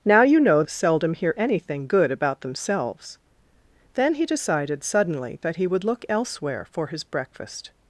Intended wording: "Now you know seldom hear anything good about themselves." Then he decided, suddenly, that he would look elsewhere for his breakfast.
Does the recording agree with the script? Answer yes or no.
yes